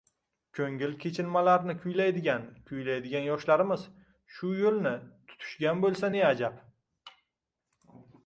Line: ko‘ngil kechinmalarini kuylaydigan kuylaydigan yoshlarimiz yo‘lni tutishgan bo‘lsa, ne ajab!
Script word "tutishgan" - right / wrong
right